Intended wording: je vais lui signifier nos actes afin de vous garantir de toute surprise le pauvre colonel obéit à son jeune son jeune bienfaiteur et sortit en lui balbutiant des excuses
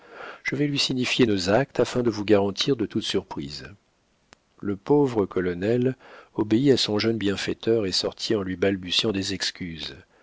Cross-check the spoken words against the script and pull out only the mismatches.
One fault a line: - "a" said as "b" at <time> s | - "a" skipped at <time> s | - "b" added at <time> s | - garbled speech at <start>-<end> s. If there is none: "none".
- "son jeune" skipped at 7.2 s